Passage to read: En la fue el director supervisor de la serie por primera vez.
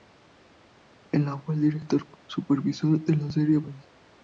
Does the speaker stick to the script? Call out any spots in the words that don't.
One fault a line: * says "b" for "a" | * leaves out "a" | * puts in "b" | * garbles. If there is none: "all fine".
* leaves out "por primera"